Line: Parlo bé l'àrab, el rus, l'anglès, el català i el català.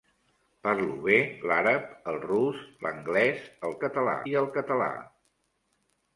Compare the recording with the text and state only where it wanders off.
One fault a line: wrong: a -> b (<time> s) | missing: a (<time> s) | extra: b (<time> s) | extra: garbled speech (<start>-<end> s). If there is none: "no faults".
no faults